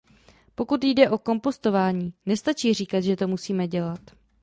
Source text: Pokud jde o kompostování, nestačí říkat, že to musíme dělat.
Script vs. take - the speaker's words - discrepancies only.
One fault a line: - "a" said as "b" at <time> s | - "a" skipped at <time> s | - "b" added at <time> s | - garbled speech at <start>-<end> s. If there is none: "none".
none